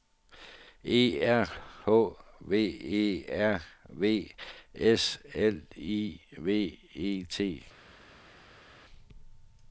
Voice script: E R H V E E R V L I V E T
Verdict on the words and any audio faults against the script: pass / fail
fail